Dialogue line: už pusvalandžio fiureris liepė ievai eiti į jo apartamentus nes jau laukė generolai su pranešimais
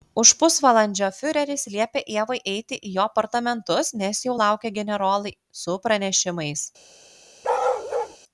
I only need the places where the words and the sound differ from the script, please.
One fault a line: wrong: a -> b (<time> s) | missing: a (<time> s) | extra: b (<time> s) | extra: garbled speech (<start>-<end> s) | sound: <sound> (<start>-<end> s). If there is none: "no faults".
sound: bark (7.4-8.2 s)